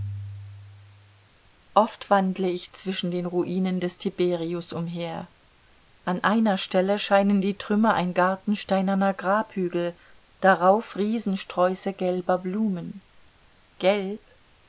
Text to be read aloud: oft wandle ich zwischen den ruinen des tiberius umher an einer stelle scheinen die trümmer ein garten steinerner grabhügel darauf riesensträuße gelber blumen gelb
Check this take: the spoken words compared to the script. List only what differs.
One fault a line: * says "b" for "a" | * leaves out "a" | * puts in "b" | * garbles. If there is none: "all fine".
all fine